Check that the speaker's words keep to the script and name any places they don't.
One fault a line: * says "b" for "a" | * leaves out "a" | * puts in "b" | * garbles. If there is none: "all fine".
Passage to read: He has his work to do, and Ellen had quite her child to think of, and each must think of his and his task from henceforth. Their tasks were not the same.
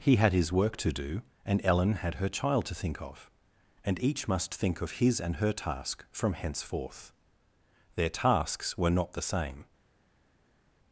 * says "had" for "has"
* leaves out "quite"
* says "her" for "his"